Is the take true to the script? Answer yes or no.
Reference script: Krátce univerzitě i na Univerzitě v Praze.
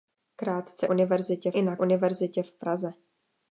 yes